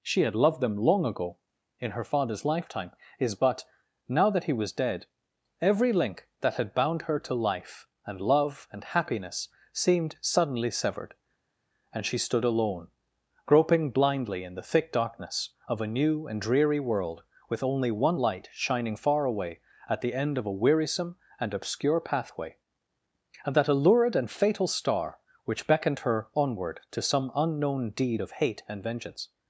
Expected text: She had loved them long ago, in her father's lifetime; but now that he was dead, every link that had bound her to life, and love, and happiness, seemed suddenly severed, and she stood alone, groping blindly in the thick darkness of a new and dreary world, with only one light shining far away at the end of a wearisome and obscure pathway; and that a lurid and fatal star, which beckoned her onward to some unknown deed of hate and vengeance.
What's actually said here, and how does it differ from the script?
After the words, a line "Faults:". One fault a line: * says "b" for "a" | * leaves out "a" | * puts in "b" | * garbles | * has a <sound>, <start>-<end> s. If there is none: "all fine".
She had loved them long ago, in her father's lifetime; is but now that he was dead, every link that had bound her to life, and love, and happiness, seemed suddenly severed, and she stood alone, groping blindly in the thick darkness of a new and dreary world, with only one light shining far away at the end of a wearisome and obscure pathway; and that a lurid and fatal star, which beckoned her onward to some unknown deed of hate and vengeance.
Faults:
* puts in "is"